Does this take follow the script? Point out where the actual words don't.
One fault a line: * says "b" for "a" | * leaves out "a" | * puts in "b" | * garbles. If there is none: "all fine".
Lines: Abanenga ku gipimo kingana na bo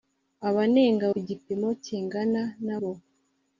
all fine